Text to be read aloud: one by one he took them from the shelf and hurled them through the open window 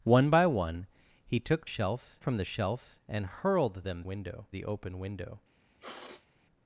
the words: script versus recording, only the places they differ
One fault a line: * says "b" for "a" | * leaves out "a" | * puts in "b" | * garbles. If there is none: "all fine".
* says "shelf" for "them"
* says "window" for "through"